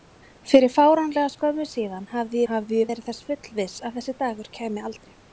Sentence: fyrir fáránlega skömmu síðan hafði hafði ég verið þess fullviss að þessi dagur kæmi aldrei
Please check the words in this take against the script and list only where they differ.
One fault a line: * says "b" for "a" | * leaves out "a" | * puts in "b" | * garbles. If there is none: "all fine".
all fine